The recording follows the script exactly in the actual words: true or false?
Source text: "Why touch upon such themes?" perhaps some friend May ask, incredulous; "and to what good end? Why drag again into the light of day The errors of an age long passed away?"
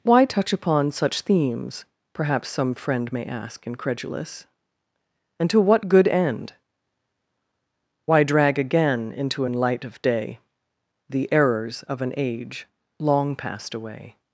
false